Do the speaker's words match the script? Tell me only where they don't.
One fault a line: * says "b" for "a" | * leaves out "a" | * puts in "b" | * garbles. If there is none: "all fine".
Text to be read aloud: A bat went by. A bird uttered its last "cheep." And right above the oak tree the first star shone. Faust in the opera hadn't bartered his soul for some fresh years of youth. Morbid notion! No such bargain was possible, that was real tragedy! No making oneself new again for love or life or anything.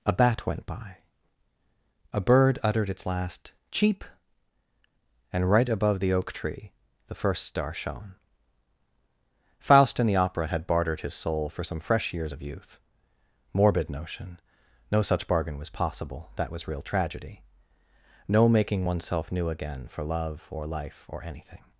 * says "had" for "hadn't"